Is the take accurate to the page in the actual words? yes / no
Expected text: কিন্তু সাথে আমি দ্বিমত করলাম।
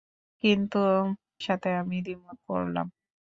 yes